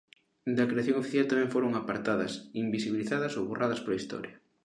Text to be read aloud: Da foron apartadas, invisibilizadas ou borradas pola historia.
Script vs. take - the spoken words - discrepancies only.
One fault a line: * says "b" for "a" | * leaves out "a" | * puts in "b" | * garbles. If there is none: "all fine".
* puts in "creación oficial tamén"